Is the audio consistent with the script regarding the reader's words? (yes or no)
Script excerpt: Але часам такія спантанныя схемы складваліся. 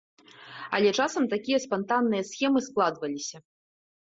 yes